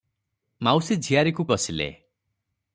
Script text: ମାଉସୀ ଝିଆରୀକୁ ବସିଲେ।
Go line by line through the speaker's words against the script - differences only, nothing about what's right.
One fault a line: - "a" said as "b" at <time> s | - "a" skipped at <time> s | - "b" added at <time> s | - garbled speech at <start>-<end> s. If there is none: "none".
none